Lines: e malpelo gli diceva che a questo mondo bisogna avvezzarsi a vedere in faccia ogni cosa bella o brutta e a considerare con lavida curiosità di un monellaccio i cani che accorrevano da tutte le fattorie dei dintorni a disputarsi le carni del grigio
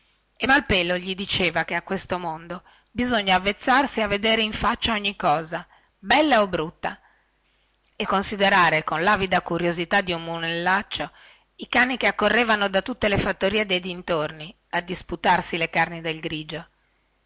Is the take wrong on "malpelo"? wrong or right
right